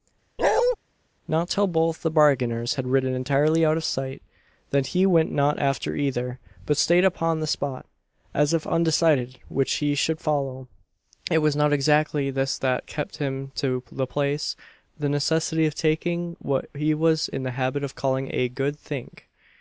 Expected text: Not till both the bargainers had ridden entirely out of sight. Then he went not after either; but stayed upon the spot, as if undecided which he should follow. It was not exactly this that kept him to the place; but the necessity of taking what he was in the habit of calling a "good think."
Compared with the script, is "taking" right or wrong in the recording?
right